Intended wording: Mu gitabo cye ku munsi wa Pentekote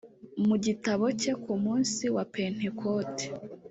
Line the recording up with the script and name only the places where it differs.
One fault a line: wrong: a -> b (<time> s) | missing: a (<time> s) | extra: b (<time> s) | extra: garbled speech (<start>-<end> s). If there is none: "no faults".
no faults